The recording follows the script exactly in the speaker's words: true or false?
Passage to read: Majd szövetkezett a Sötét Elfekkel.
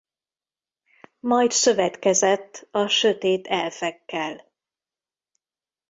true